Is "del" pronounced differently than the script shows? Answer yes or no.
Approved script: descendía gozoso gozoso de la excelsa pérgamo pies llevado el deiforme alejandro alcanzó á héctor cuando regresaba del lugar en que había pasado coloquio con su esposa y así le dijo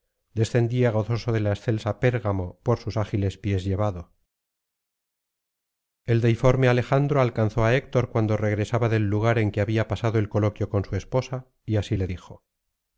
no